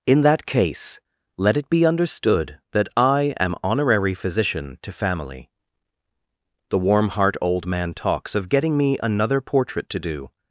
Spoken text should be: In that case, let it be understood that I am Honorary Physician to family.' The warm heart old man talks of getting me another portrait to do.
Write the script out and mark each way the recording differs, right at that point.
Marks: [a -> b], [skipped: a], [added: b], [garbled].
In that case, let it be understood that I am Honorary Physician to family.' The warm heart old man talks of getting me another portrait to do.